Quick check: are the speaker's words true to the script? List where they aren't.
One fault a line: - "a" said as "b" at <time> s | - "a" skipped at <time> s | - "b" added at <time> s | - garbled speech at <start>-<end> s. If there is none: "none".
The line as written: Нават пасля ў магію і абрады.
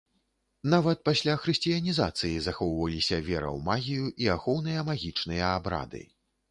- "хрысціянізацыі захоўваліся вера" added at 1.4 s
- "ахоўныя магічныя" added at 4.4 s